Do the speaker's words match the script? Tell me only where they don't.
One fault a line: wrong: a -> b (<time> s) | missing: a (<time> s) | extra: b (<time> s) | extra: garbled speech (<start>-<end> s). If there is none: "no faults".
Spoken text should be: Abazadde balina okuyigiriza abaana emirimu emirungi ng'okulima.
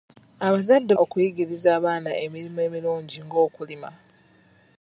missing: balina (0.9 s)